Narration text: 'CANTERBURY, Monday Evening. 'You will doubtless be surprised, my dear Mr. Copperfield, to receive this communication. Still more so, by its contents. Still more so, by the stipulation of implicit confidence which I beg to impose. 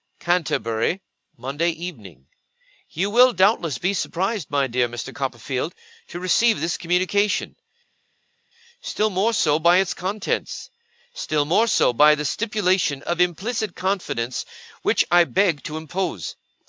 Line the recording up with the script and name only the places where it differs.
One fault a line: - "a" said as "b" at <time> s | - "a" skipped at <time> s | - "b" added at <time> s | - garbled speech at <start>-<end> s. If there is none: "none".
none